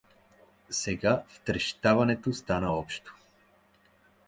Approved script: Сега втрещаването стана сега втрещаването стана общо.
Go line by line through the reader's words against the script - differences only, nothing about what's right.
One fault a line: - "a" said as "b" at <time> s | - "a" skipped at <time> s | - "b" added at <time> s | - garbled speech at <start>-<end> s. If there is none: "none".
- "сега втрещаването стана" skipped at 2.7 s